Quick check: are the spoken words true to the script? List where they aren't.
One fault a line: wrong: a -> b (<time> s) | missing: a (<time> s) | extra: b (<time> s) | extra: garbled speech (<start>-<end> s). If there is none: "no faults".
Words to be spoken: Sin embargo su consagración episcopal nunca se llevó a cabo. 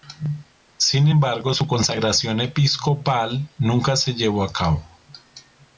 no faults